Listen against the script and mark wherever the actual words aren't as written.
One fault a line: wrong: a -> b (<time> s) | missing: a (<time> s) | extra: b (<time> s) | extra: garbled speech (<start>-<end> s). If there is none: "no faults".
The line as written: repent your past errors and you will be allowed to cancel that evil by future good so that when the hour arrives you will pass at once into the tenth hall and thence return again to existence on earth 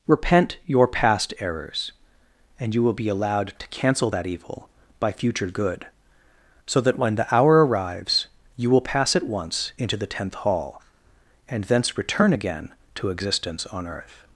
no faults